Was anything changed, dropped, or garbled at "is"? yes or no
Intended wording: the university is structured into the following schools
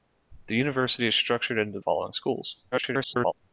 no